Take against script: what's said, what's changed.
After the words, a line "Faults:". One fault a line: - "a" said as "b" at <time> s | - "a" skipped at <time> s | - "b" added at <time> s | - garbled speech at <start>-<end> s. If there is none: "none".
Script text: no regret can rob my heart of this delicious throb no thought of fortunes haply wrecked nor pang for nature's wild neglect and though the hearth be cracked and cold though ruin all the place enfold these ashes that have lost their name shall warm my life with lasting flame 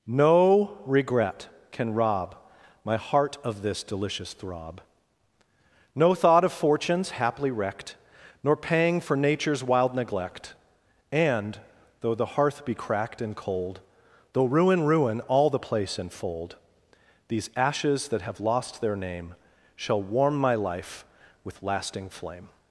no regret can rob my heart of this delicious throb no thought of fortunes haply wrecked nor pang for nature's wild neglect and though the hearth be cracked and cold though ruin ruin all the place enfold these ashes that have lost their name shall warm my life with lasting flame
Faults:
- "ruin" added at 14.9 s